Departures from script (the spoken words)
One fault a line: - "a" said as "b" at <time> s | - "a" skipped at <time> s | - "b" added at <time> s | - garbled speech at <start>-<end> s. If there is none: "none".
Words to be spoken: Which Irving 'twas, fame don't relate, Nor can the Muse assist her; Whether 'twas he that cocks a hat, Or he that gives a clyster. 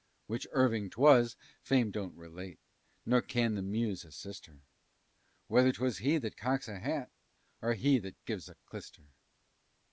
none